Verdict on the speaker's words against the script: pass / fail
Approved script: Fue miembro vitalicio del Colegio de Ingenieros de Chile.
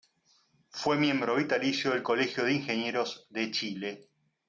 pass